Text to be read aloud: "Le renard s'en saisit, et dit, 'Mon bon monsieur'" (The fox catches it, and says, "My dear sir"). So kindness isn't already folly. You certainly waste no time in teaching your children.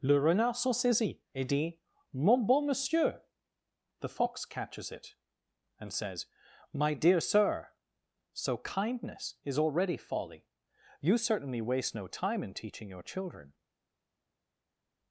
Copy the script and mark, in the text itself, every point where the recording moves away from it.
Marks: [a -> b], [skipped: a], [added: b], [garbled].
"Le renard s'en saisit, et dit, 'Mon bon monsieur'" (The fox catches it, and says, "My dear sir"). So kindness [isn't -> is] already folly. You certainly waste no time in teaching your children.